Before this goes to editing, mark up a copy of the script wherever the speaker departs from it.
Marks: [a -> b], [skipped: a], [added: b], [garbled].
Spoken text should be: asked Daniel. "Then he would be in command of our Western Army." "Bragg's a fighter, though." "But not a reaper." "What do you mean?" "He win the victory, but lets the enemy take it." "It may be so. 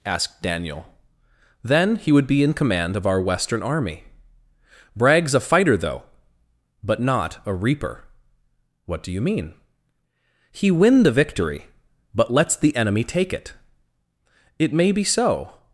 asked Daniel. "Then he would be in command of our Western Army." "Bragg's a fighter, though." "But not a reaper." "What do you mean?" "He win the victory, but lets the enemy take it." "It may be so.